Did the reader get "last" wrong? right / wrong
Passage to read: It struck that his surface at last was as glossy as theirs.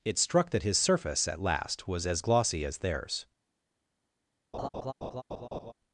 right